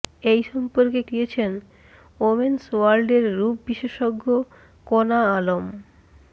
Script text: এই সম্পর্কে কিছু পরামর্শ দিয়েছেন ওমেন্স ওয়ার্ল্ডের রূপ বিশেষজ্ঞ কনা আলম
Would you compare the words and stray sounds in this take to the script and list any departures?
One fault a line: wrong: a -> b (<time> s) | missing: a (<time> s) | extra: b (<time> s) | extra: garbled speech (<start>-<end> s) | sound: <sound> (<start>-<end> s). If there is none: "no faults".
missing: কিছু পরামর্শ (1.0 s)